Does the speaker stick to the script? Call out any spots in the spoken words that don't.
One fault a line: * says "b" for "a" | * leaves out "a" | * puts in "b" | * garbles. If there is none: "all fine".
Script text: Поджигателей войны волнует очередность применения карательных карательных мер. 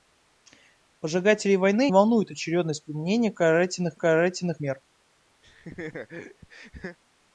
all fine